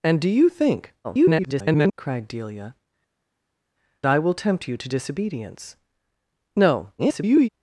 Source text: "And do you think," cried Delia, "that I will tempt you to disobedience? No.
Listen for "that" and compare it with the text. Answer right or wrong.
wrong